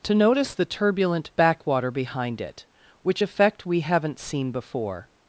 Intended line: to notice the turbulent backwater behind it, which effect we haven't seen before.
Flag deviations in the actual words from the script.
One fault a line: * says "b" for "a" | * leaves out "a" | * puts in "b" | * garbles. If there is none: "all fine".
all fine